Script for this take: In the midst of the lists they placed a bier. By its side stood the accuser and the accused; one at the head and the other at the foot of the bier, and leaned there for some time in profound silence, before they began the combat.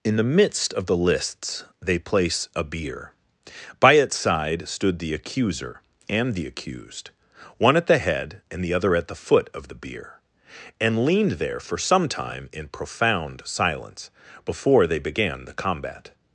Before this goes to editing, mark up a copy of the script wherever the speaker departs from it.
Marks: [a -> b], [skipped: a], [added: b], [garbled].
In the midst of the lists they [placed -> place] a bier. By its side stood the accuser and the accused; one at the head and the other at the foot of the bier, and leaned there for some time in profound silence, before they began the combat.